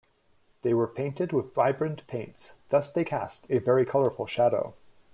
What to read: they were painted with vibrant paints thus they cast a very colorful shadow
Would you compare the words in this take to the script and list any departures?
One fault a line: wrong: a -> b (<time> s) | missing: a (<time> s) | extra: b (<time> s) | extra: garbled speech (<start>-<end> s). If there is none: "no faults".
no faults